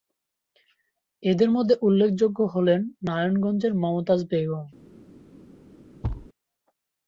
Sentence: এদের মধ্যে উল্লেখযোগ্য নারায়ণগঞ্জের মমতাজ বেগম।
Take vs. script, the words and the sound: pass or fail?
fail